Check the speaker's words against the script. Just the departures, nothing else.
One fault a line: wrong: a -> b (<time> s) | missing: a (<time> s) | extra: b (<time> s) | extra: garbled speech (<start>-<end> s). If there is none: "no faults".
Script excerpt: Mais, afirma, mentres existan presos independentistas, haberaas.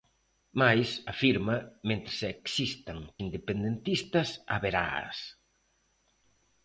missing: presos (3.0 s)